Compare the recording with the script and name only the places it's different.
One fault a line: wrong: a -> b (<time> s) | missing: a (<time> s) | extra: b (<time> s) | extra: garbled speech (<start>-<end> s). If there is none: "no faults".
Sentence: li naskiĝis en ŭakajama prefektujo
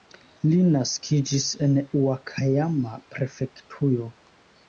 no faults